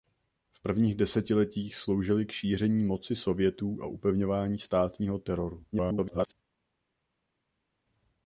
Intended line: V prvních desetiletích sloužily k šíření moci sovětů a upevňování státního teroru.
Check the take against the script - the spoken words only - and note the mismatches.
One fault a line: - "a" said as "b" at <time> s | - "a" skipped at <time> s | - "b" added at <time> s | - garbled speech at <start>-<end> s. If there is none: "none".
- garbled speech at 5.7-6.3 s